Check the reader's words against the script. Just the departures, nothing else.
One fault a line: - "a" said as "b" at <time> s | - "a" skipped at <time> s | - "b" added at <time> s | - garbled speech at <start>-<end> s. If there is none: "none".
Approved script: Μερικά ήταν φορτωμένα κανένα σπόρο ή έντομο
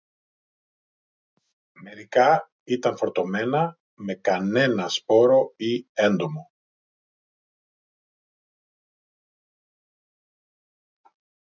- "με" added at 3.9 s